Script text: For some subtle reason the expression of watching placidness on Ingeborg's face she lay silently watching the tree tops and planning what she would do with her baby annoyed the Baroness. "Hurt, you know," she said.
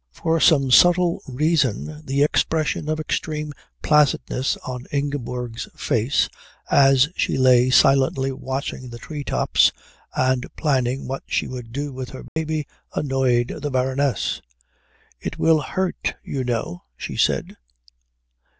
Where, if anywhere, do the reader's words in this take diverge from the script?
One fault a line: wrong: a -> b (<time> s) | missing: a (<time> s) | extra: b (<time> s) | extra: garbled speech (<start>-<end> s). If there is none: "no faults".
wrong: watching -> extreme (3.0 s)
extra: as (6.7 s)
extra: It will (15.2 s)